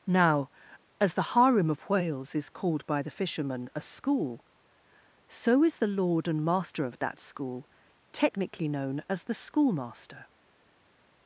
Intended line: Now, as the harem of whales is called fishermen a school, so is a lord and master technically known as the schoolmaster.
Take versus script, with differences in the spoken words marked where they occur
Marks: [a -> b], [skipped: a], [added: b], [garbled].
Now, as the harem of whales is called [added: by the] fishermen a school, so is [a -> the] lord and master [added: of that school] technically known as the schoolmaster.